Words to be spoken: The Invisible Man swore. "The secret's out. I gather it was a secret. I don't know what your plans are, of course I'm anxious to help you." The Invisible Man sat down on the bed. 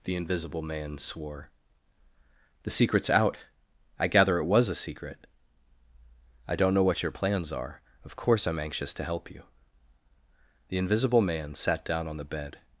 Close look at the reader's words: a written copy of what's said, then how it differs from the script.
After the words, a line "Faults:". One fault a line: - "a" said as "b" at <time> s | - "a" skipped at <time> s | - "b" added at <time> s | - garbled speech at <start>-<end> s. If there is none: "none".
The Invisible Man swore. "The secret's out. I gather it was a secret. I don't know what your plans are, of course I'm anxious to help you." The Invisible Man sat down on the bed.
Faults:
none